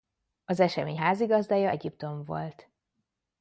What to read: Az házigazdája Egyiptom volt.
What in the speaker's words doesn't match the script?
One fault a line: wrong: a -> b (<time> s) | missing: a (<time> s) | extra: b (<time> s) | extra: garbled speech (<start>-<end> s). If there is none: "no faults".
extra: esemény (0.6 s)